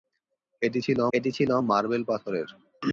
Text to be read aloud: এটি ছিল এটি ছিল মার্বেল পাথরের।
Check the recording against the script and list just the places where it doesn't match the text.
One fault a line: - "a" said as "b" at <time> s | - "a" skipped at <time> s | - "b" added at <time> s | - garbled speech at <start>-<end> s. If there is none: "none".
none